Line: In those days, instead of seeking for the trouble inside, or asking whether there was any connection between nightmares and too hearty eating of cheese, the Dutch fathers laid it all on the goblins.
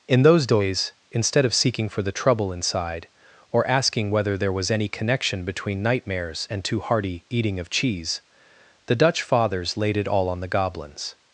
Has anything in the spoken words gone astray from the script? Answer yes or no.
no